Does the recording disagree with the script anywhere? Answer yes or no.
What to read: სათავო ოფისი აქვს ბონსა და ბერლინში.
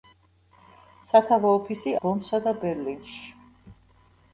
yes